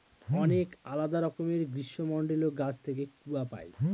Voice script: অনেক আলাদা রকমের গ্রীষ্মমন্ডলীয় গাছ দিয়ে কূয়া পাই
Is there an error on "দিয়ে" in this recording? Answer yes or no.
yes